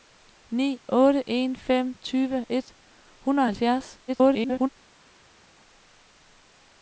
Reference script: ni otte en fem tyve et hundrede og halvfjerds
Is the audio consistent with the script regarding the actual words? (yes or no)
no